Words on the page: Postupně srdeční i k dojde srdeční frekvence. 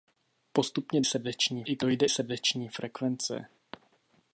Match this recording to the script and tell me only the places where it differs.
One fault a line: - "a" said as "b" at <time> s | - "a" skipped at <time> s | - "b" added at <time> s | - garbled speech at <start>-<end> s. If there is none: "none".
none